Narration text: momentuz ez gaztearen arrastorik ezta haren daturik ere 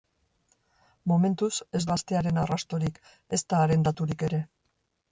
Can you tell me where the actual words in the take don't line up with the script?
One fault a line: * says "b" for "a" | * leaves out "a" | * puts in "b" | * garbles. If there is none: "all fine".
all fine